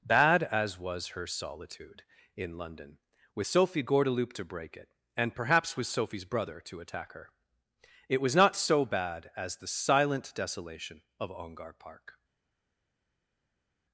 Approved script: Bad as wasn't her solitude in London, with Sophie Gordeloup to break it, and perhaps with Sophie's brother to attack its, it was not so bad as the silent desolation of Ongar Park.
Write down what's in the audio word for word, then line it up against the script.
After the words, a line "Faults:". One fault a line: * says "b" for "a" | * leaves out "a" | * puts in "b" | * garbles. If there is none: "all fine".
Bad as was her solitude in London, with Sophie Gordeloup to break it, and perhaps with Sophie's brother to attack her, it was not so bad as the silent desolation of Ongar Park.
Faults:
* says "was" for "wasn't"
* says "her" for "its"